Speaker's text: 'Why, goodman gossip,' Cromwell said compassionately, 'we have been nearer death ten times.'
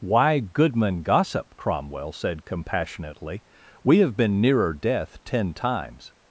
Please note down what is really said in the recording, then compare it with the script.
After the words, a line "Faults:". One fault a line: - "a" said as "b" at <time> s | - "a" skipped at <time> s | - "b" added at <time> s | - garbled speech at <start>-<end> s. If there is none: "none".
'Why, goodman gossip,' Cromwell said compassionately, 'we have been nearer death ten times.'
Faults:
none